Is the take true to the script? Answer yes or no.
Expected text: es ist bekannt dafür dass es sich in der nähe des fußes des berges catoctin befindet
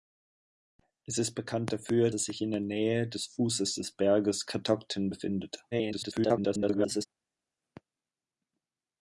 no